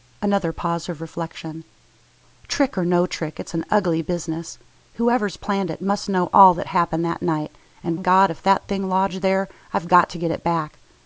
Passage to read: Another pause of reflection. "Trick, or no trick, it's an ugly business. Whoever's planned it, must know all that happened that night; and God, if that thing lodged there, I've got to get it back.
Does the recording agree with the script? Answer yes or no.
yes